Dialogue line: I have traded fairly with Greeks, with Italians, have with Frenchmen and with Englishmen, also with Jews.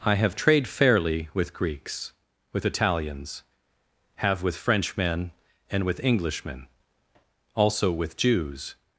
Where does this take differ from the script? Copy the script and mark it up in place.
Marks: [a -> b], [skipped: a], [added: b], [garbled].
I have [traded -> trade] fairly with Greeks, with Italians, have with Frenchmen and with Englishmen, also with Jews.